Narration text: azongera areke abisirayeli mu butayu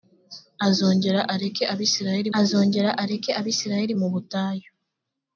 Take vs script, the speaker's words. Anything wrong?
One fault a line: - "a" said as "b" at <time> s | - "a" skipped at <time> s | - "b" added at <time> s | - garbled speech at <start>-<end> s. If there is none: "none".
- "azongera areke abisirayeli" added at 2.4 s